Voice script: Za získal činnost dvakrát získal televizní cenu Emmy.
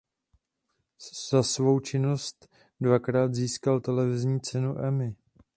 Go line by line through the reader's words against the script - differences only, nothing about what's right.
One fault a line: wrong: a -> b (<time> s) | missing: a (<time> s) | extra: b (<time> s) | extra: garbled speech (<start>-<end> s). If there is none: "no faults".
wrong: získal -> svou (1.4 s)